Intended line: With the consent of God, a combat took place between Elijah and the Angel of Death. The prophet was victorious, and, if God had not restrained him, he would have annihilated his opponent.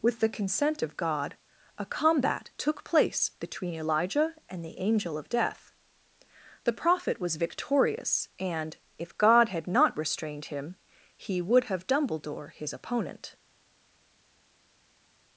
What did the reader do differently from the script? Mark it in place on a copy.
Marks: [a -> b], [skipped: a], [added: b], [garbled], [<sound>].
With the consent of God, a combat took place between Elijah and the Angel of Death. The prophet was victorious, and, if God had not restrained him, he would have [annihilated -> dumbledore] his opponent.